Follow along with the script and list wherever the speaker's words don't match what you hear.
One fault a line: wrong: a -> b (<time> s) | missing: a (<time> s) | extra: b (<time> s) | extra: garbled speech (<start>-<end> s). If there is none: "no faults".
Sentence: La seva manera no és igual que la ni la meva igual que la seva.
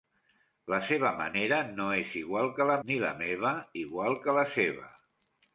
no faults